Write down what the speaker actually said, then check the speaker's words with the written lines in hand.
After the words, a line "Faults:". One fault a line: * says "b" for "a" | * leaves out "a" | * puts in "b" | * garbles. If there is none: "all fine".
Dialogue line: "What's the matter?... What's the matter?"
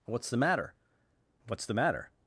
"What's the matter?... What's the matter?"
Faults:
all fine